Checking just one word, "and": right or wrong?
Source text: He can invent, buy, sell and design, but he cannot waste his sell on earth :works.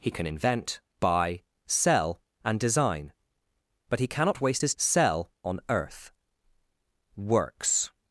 right